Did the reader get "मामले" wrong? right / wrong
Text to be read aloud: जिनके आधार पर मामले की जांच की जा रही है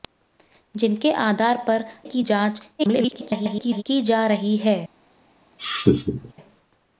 wrong